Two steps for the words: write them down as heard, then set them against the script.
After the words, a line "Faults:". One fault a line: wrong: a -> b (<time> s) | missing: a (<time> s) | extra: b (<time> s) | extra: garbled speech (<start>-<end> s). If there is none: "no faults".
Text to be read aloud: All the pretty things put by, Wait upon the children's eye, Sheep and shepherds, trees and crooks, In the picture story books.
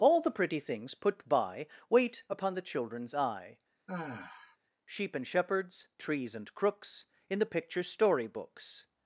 All the pretty things put by, Wait upon the children's eye, Sheep and shepherds, trees and crooks, In the picture story books.
Faults:
no faults